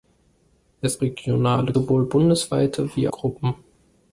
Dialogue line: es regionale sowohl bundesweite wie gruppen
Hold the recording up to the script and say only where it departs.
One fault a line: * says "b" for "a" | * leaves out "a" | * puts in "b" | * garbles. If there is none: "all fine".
all fine